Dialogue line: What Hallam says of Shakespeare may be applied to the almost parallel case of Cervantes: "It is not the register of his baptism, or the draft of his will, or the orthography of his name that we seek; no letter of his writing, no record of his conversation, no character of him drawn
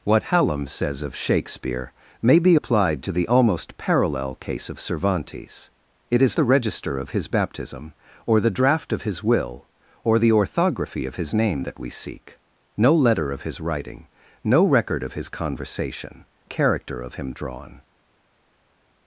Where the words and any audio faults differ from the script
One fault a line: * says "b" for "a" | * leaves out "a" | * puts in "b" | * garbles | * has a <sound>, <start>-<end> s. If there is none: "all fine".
* leaves out "not"
* leaves out "no"